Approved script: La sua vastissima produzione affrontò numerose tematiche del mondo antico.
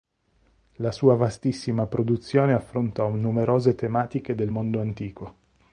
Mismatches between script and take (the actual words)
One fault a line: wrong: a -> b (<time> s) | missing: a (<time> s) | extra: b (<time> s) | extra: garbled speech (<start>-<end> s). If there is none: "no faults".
no faults